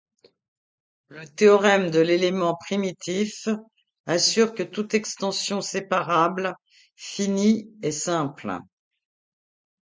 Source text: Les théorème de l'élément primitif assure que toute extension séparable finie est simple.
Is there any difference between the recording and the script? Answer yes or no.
yes